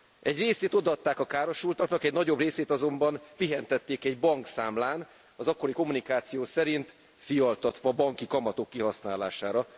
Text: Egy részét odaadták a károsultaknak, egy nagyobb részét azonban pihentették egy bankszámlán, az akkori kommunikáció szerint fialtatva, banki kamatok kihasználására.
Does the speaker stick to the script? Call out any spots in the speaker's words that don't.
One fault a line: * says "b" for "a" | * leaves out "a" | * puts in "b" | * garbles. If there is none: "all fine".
all fine